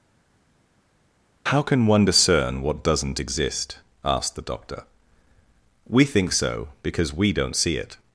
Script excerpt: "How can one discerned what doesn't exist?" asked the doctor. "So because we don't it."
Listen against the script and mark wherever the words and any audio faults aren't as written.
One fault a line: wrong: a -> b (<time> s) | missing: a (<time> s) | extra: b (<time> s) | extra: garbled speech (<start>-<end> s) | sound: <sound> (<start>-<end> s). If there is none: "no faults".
wrong: discerned -> discern (2.0 s)
extra: We think (5.9 s)
extra: see (7.6 s)